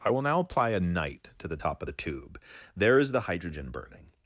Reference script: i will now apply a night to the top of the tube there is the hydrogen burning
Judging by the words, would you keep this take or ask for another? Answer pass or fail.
pass